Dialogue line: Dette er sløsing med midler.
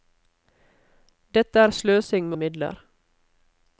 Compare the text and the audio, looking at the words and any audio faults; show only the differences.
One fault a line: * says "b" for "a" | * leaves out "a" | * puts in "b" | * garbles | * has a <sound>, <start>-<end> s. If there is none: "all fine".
all fine